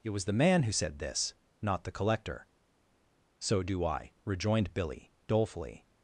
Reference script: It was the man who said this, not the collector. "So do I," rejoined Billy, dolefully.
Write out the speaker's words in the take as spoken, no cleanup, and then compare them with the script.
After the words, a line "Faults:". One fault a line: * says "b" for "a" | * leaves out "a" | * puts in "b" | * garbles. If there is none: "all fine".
It was the man who said this, not the collector. "So do I," rejoined Billy, dolefully.
Faults:
all fine